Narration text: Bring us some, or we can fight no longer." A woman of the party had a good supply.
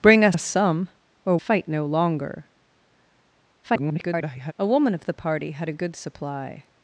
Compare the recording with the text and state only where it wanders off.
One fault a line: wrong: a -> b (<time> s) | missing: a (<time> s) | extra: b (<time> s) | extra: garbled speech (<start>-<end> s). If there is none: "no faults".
extra: us (0.3 s)
missing: we can (1.4 s)
extra: garbled speech (3.6-4.5 s)